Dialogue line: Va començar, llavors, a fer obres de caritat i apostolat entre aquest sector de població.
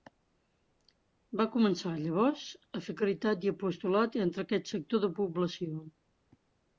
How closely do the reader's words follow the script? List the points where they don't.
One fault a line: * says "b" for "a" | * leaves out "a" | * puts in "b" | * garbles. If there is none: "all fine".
* leaves out "fer obres"